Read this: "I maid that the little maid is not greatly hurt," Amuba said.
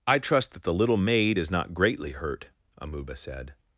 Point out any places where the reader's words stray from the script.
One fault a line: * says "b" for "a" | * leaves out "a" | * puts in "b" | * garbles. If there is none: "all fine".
* says "trust" for "maid"